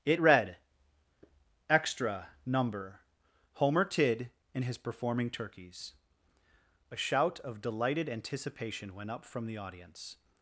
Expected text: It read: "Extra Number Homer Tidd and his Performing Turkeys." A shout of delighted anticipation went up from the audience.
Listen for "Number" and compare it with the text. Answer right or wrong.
right